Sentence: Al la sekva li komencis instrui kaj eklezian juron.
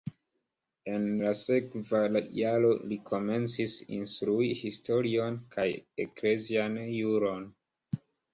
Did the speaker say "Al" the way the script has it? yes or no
no